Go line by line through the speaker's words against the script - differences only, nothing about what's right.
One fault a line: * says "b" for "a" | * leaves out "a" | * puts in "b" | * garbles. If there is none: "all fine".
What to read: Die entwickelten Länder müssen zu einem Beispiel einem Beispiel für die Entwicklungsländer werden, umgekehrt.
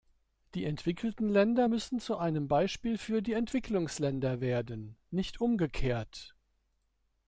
* leaves out "einem Beispiel"
* puts in "nicht"